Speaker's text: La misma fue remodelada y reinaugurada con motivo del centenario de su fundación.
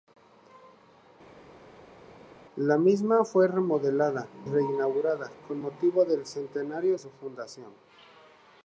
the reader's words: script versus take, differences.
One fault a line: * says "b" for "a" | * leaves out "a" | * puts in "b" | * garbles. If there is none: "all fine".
* leaves out "y"
* leaves out "de"